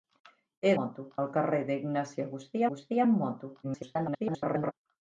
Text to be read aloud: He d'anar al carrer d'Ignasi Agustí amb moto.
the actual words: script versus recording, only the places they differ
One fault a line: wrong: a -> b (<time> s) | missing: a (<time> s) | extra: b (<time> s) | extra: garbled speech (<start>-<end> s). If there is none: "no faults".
wrong: d'anar -> moto (0.8 s)
extra: Agustí (2.7 s)
extra: garbled speech (3.6-4.7 s)